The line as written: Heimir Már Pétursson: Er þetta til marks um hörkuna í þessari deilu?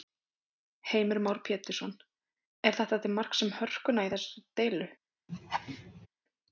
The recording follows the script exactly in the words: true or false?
true